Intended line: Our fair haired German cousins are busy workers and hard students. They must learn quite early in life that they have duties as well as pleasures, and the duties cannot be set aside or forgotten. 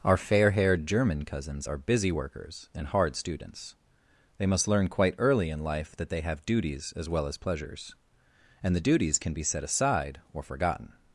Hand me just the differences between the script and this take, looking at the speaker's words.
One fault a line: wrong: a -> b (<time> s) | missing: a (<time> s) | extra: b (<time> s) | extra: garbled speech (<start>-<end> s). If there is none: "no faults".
wrong: cannot -> can (9.2 s)